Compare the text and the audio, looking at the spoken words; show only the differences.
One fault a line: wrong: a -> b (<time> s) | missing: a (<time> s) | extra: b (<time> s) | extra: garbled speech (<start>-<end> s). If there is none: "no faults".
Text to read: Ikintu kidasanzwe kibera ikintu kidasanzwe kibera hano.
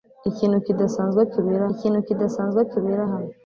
no faults